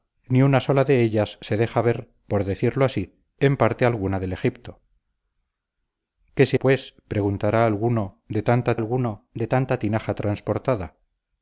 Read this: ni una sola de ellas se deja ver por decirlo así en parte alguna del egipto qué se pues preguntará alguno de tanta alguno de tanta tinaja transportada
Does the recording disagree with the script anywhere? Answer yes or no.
no